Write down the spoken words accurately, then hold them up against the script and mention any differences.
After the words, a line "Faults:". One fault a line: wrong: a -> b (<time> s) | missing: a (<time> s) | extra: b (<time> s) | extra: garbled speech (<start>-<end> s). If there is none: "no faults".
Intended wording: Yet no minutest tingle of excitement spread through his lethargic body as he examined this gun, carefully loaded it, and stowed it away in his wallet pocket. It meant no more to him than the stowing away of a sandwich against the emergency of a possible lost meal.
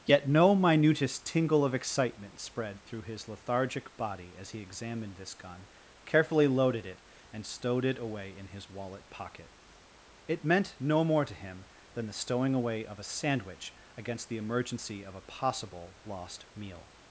Yet no minutest tingle of excitement spread through his lethargic body as he examined this gun, carefully loaded it, and stowed it away in his wallet pocket. It meant no more to him than the stowing away of a sandwich against the emergency of a possible lost meal.
Faults:
no faults